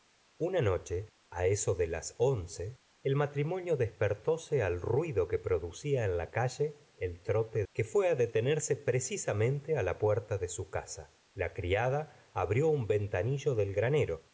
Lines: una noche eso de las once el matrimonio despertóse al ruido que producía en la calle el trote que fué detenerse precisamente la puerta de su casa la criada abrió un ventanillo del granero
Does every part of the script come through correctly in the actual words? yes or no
yes